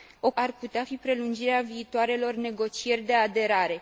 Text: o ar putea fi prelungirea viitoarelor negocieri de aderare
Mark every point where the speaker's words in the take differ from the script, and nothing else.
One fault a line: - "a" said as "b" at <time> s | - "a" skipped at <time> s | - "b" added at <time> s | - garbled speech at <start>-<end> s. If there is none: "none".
none